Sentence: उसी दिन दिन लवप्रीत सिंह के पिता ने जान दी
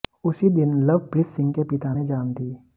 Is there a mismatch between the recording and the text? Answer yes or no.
yes